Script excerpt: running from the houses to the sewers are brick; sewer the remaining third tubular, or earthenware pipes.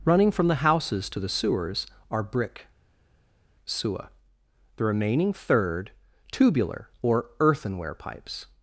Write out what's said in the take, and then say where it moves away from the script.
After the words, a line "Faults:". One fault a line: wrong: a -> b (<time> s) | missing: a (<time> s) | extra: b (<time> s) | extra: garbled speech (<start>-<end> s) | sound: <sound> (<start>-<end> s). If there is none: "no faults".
running from the houses to the sewers are brick; sewer the remaining third tubular, or earthenware pipes.
Faults:
no faults